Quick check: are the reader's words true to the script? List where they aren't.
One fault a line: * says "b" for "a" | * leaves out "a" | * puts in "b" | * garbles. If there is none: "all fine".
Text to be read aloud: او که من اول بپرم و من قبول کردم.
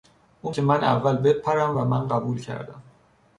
all fine